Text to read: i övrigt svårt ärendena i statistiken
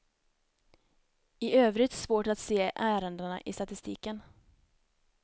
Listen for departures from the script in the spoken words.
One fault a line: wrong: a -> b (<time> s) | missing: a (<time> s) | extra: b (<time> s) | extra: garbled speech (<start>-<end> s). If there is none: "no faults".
extra: att se (2.3 s)